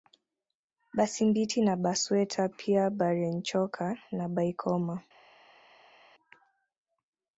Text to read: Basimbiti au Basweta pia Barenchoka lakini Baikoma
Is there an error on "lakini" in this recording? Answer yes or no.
yes